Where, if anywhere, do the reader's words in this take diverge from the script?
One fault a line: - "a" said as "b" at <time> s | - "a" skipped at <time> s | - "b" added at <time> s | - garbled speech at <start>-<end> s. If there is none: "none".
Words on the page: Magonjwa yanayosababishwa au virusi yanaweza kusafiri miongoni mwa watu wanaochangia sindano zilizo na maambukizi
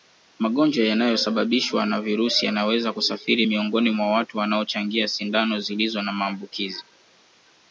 - "au" said as "na" at 1.9 s